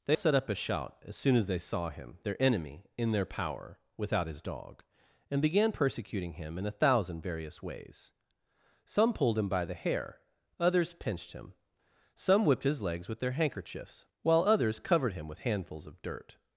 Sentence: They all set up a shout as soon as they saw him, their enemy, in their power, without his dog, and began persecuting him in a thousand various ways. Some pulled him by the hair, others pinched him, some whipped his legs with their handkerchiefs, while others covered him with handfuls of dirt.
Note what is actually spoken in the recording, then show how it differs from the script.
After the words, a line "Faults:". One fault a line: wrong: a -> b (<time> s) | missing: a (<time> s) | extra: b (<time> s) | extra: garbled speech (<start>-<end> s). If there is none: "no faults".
They set up a shout as soon as they saw him, their enemy, in their power, without his dog, and began persecuting him in a thousand various ways. Some pulled him by the hair, others pinched him, some whipped his legs with their handkerchiefs, while others covered him with handfuls of dirt.
Faults:
missing: all (0.2 s)